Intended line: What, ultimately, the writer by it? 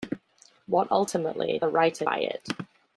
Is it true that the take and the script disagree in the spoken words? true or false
false